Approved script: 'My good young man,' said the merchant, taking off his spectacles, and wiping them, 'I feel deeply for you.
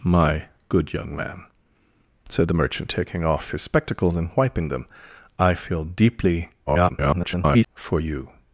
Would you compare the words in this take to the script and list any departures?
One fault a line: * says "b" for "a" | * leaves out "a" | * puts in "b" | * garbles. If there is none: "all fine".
* garbles